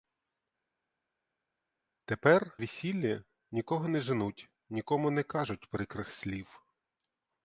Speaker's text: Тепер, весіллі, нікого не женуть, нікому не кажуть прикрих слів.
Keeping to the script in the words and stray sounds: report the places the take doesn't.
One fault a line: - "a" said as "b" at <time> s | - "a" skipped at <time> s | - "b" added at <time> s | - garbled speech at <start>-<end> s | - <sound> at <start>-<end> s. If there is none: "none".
none